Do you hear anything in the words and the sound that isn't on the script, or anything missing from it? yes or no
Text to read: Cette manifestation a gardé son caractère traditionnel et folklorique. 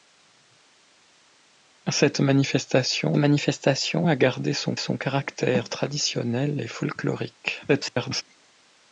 yes